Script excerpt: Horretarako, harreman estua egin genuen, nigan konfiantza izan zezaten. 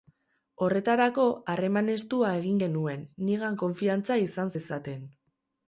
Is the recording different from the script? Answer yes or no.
no